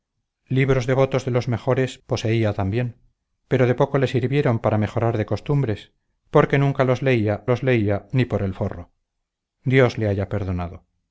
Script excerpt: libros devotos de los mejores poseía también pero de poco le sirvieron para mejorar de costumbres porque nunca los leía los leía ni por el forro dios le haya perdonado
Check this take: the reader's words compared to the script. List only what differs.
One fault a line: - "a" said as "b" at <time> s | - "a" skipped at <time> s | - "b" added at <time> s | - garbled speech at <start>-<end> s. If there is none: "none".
none